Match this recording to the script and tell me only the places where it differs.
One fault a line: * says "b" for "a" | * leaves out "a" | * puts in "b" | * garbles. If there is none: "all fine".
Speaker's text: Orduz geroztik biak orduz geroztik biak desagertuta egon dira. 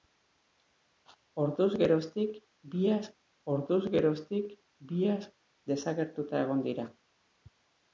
all fine